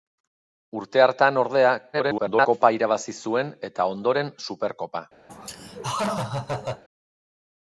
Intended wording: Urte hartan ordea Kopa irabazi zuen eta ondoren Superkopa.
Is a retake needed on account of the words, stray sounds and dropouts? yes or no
yes